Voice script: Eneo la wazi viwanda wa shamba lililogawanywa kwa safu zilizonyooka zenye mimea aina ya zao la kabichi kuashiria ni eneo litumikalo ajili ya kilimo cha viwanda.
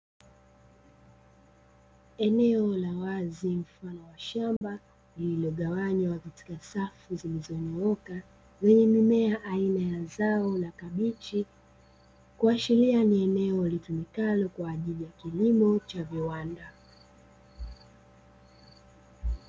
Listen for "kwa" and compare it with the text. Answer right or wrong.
wrong